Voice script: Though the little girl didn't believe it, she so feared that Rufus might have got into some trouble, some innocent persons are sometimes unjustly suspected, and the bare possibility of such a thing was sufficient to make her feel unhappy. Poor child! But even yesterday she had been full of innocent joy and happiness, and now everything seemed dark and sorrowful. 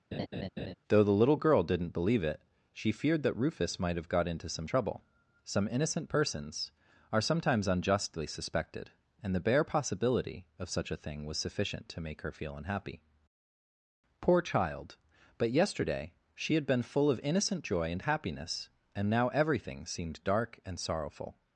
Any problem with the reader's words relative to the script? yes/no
yes